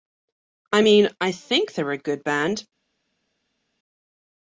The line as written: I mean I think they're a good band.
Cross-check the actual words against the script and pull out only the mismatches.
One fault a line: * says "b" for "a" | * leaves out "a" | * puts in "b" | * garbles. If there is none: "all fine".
all fine